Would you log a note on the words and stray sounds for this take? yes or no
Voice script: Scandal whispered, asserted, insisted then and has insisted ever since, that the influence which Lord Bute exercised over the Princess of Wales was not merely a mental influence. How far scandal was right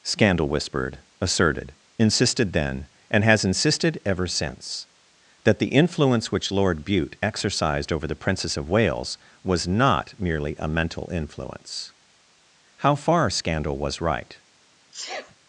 yes